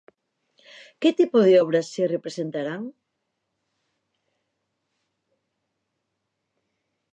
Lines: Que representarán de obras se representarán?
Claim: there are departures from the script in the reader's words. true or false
true